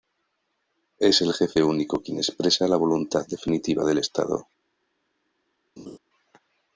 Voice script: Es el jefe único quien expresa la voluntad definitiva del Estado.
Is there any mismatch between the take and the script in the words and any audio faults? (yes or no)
yes